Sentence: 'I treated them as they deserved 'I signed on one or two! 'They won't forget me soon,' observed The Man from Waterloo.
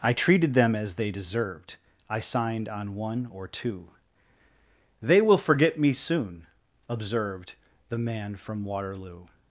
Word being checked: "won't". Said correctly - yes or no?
no